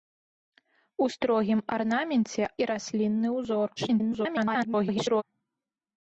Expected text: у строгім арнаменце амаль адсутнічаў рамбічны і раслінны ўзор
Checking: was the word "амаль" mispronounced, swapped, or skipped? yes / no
yes